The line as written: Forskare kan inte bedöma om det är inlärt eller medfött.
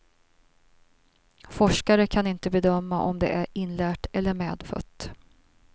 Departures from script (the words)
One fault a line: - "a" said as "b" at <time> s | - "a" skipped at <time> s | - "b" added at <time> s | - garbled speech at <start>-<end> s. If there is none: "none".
none